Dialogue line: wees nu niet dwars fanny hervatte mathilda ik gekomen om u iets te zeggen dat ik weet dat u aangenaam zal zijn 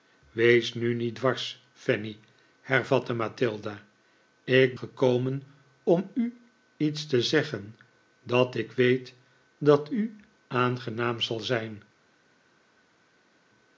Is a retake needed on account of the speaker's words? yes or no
no